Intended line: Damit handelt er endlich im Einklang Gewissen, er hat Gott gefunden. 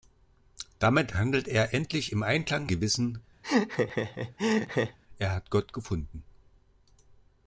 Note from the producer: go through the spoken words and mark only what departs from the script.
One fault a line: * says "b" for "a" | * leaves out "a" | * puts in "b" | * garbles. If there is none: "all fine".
all fine